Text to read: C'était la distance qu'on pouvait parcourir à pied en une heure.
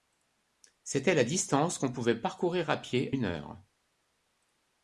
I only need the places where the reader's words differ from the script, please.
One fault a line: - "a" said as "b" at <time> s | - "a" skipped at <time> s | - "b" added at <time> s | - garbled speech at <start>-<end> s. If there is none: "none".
- "en" skipped at 3.1 s